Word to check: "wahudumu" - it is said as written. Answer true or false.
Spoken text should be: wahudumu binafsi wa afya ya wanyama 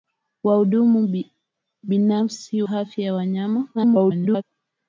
true